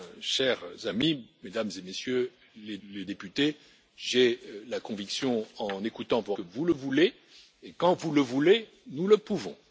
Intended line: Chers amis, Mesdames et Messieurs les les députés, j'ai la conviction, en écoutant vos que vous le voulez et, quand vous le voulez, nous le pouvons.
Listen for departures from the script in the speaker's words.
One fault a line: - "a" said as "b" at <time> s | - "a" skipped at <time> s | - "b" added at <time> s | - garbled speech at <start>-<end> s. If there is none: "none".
none